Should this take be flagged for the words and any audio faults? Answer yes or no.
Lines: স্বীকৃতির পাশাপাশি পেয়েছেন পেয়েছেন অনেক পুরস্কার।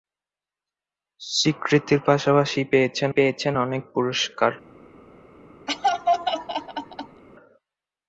yes